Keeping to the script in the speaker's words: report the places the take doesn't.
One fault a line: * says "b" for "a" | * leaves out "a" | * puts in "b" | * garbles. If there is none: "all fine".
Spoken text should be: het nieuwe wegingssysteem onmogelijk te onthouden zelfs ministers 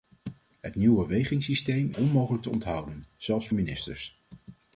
all fine